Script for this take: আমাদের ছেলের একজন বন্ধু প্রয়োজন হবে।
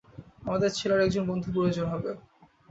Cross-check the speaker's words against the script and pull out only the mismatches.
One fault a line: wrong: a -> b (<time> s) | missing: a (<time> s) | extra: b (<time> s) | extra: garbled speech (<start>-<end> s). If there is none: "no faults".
no faults